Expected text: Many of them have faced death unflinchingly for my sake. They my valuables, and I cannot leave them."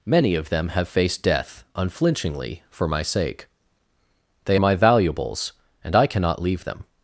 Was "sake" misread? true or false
false